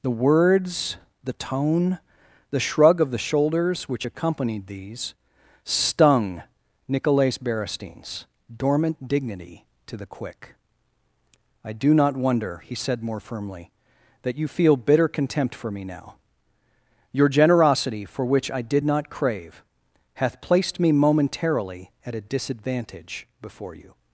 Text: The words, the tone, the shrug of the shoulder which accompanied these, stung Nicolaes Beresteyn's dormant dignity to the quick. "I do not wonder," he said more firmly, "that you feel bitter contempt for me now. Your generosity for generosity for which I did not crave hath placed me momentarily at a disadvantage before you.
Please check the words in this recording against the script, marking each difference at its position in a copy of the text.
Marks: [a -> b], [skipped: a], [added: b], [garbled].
The words, the tone, the shrug of the [shoulder -> shoulders] which accompanied these, stung Nicolaes Beresteyn's dormant dignity to the quick. "I do not wonder," he said more firmly, "that you feel bitter contempt for me now. Your generosity for [skipped: generosity for] which I did not crave hath placed me momentarily at a disadvantage before you.